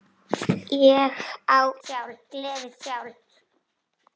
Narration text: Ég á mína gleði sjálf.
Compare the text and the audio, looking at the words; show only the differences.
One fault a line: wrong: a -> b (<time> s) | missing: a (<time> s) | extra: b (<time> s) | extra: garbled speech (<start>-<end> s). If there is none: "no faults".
wrong: mína -> sjálf (1.9 s)